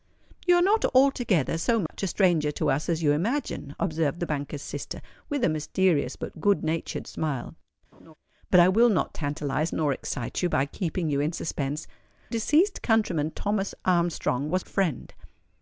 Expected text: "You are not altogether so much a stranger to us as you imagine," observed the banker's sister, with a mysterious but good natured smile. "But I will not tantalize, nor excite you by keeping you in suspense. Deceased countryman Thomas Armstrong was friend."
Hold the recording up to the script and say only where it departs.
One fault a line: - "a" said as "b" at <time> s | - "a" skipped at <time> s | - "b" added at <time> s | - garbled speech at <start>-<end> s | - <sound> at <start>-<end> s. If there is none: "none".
- dropout at 1.9-1.9 s
- laugh at 7.9-8.1 s